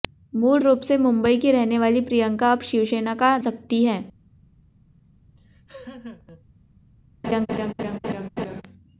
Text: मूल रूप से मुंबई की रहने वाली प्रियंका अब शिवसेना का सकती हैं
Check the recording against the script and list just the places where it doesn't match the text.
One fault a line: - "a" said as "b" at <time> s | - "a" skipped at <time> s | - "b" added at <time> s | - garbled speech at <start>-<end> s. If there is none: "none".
none